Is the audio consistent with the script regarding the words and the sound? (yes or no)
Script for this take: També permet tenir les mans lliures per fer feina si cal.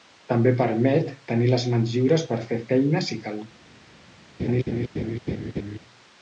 no